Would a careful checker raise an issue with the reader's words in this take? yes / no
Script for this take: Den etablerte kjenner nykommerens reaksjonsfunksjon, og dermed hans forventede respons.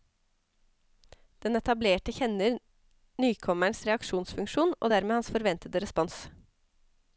no